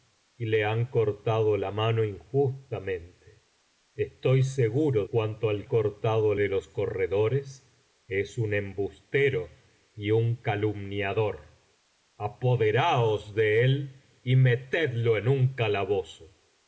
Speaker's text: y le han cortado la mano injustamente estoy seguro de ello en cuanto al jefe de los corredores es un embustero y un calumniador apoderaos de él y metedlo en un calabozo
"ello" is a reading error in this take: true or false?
true